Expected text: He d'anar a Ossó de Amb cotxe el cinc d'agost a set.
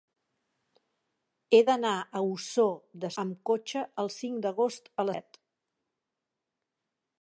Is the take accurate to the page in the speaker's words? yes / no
yes